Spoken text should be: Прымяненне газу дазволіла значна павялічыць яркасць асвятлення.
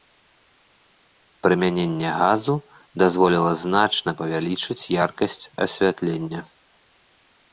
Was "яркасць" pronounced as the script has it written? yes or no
yes